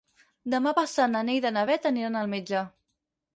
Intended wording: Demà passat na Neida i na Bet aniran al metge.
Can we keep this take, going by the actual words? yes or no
yes